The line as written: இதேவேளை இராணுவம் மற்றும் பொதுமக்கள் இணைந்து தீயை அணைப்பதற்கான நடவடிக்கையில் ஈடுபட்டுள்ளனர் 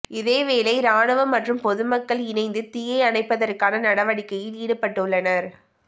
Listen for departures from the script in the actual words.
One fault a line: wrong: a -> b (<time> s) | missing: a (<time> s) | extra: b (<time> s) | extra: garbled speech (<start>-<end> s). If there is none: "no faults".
no faults